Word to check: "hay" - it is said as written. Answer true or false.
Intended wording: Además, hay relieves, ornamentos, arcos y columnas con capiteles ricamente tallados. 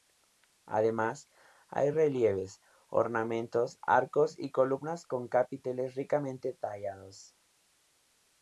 true